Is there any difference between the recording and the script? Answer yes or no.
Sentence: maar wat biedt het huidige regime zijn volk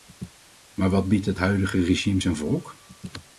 no